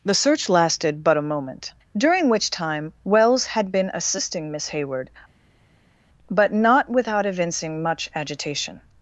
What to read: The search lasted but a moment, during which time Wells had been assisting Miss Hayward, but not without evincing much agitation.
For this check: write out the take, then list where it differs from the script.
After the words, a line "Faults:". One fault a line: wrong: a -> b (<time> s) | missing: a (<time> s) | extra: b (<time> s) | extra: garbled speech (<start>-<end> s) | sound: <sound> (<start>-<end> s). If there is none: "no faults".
The search lasted but a moment, during which time Wells had been assisting Miss Hayward, but not without evincing much agitation.
Faults:
no faults